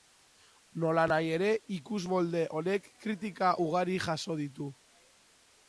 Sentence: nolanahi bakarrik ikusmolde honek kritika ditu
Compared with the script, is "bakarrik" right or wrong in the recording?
wrong